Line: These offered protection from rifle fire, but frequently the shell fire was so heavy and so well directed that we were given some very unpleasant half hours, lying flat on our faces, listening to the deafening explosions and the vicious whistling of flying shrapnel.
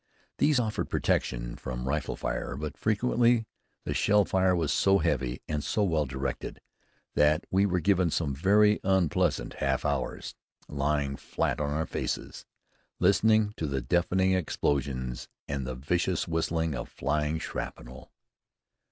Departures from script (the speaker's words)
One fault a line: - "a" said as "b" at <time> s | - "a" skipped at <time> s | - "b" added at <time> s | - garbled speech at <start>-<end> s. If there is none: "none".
none